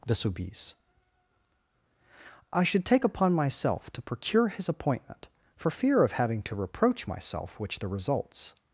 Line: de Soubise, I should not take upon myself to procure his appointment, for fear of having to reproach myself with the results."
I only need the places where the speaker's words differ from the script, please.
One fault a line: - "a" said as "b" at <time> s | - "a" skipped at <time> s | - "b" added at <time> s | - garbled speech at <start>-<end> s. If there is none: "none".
- "not" skipped at 2.9 s
- "with" said as "which" at 7.6 s